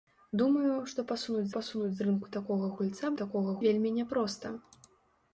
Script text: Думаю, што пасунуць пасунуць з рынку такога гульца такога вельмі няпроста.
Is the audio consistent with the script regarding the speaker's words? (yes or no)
yes